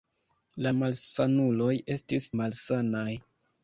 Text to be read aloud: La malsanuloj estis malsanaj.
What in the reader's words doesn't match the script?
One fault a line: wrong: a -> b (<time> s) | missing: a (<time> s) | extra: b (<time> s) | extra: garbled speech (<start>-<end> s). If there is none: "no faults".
no faults